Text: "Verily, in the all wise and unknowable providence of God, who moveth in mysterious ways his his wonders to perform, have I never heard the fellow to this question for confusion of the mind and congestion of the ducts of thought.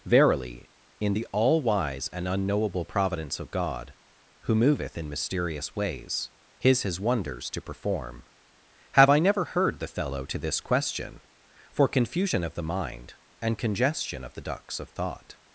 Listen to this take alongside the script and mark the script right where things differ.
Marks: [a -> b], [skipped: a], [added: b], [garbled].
"Verily, in the all wise and unknowable providence of God, who moveth in mysterious ways his his wonders to perform, have I never heard the fellow to this question for confusion of the mind and congestion of the ducts of thought.